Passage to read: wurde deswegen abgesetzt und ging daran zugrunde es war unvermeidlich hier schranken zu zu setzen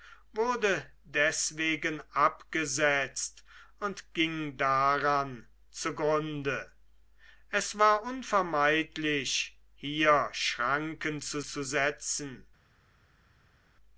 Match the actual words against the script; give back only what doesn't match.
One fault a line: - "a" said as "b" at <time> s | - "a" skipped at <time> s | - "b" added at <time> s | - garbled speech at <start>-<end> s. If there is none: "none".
none